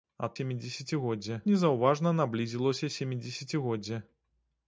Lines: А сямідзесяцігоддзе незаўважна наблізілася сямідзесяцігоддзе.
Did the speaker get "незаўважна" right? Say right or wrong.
right